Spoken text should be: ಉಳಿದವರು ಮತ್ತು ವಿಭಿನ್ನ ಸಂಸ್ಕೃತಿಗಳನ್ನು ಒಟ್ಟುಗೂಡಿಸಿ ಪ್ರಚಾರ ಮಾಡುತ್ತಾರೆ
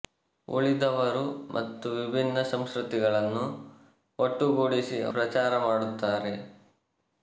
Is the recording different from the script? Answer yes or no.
no